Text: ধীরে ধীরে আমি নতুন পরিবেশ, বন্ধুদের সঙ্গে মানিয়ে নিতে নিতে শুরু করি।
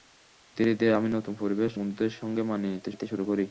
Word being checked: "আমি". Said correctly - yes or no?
yes